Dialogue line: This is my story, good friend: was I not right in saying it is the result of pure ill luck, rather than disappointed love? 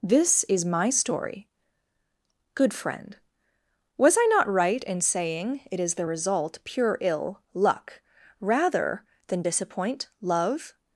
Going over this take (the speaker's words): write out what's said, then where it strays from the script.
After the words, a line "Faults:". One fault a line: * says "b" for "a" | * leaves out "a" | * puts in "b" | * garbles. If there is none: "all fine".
This is my story, good friend: was I not right in saying it is the result pure ill luck, rather than disappoint love?
Faults:
* leaves out "of"
* says "disappoint" for "disappointed"